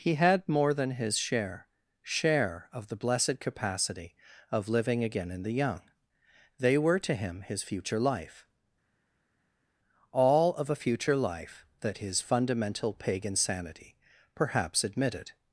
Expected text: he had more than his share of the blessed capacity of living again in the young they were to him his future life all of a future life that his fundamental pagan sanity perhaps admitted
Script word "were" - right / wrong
right